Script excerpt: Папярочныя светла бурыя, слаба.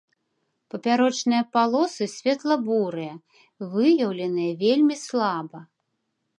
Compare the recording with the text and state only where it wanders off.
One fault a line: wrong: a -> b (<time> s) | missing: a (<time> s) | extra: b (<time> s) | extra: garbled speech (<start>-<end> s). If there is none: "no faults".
extra: палосы (1.6 s)
extra: выяўленыя вельмі (3.8 s)